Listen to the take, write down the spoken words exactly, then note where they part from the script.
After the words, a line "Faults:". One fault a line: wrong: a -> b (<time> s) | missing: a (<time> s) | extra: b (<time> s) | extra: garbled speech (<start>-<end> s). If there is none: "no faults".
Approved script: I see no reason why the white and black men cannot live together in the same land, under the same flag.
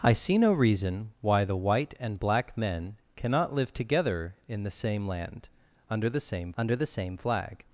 I see no reason why the white and black men cannot live together in the same land, under the same under the same flag.
Faults:
extra: under the same (6.6 s)